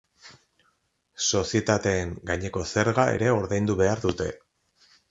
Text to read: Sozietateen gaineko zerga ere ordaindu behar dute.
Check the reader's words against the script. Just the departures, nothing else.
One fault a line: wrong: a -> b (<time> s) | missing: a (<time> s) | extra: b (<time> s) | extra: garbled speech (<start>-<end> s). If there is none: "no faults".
no faults